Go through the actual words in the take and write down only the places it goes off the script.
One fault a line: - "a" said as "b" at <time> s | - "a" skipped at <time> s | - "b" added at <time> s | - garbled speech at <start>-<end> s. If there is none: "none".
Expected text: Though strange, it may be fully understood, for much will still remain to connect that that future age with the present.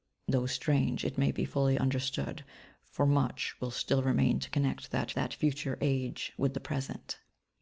none